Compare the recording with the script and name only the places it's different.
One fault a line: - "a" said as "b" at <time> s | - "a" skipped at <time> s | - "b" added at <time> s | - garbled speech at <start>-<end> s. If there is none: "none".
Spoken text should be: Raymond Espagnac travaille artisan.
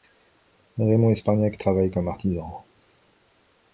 - "comme" added at 1.9 s